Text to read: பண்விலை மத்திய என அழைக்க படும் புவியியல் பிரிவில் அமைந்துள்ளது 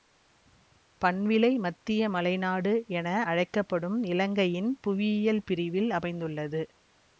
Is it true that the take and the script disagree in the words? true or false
true